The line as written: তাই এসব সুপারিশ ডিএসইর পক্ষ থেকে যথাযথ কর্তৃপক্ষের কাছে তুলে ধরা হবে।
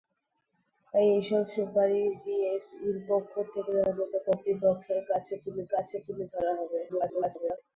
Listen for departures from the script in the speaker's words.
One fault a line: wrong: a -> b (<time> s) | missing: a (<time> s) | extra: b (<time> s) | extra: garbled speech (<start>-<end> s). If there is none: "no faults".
extra: কাছে তুলে (5.7 s)
extra: garbled speech (6.9-7.6 s)